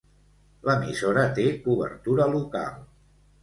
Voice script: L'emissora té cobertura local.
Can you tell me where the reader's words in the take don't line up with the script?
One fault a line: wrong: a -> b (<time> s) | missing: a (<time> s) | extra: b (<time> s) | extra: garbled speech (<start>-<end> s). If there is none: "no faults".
no faults